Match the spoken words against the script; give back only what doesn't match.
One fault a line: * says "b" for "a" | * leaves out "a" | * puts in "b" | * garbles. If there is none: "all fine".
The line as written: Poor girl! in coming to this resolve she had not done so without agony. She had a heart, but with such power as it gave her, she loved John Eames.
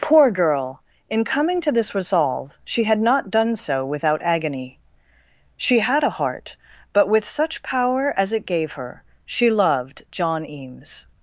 all fine